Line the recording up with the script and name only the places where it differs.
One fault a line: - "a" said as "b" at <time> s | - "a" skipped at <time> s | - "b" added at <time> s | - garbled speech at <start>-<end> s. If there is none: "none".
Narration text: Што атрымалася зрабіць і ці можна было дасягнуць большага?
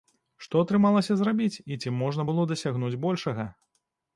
none